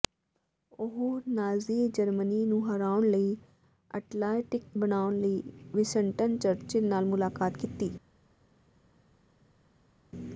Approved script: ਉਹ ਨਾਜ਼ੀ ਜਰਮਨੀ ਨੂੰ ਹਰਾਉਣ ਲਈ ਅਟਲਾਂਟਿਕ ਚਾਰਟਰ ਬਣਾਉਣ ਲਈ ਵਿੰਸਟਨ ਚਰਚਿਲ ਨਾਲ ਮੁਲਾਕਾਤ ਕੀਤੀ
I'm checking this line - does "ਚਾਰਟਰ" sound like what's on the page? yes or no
no